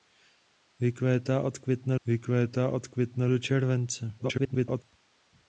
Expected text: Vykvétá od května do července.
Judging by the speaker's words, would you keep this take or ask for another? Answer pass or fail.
fail